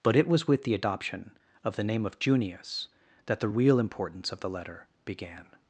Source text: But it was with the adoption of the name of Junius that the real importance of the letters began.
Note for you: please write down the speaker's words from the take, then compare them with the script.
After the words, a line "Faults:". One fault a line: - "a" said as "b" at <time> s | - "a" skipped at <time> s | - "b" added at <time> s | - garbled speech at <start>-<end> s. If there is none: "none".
But it was with the adoption of the name of Junius that the real importance of the letter began.
Faults:
- "letters" said as "letter" at 4.5 s